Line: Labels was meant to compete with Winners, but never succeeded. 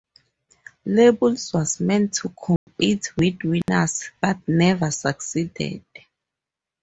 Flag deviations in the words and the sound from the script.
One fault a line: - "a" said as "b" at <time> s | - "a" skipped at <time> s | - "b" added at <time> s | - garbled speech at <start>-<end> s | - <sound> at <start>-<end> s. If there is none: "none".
- dropout at 2.6-2.7 s
- dropout at 3.6-3.7 s